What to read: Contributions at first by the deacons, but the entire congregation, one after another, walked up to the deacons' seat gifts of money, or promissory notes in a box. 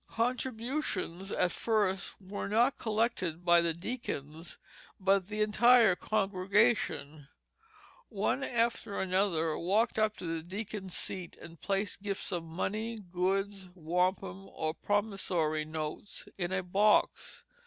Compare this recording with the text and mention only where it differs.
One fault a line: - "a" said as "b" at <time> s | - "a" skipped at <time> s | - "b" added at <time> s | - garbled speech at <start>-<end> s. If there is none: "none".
- "were not collected" added at 2.2 s
- "and placed" added at 11.4 s
- "goods wampum" added at 13.0 s